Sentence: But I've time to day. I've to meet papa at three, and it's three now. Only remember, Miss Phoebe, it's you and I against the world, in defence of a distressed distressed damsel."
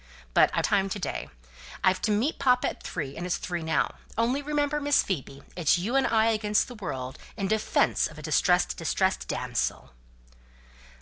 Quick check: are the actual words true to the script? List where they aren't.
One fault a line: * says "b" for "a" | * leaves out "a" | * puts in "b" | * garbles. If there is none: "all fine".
all fine